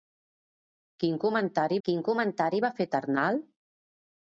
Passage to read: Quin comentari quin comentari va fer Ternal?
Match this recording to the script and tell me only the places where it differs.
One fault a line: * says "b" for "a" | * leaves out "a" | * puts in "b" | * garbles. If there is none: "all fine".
all fine